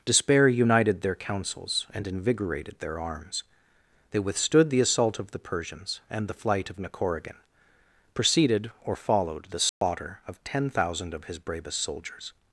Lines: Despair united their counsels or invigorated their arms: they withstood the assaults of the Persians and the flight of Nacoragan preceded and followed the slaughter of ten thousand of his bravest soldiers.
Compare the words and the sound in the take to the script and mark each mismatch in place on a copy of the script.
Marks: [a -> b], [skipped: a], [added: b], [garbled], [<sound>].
Despair united their counsels [or -> and] invigorated their arms: they withstood the [assaults -> assault] of the Persians and the flight of Nacoragan preceded [and -> or] followed the slaughter [dropout] of ten thousand of his bravest soldiers.